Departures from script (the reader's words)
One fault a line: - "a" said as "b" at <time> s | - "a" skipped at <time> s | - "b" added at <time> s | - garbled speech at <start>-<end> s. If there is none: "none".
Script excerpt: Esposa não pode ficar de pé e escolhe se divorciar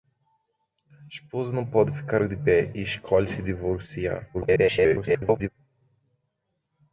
- garbled speech at 4.3-5.5 s